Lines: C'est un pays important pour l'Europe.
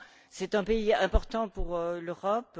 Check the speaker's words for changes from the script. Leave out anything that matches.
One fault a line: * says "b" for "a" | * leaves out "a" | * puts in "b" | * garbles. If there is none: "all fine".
all fine